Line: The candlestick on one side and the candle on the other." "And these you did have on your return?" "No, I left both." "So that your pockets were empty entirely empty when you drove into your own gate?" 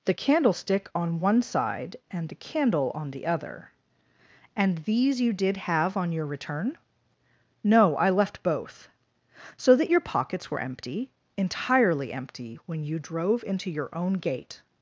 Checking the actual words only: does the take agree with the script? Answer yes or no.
yes